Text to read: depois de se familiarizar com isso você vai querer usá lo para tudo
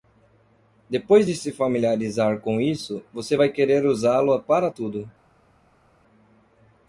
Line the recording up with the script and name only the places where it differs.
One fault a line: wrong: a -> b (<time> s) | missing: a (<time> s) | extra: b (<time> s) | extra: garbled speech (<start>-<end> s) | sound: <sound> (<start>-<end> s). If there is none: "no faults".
no faults